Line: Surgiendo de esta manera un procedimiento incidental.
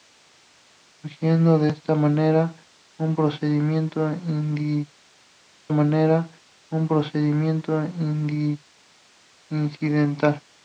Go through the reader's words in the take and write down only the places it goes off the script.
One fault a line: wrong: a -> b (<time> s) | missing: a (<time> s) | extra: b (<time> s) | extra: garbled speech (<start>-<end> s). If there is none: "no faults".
extra: manera un procedimiento (5.7 s)